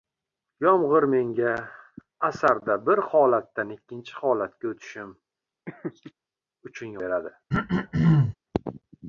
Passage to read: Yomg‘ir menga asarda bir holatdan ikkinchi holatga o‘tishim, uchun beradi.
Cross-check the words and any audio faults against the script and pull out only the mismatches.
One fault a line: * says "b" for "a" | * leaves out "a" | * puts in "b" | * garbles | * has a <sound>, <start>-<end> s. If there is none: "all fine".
* has a laugh, 5.7-6.1 s
* has a throat clearing, 7.5-8.4 s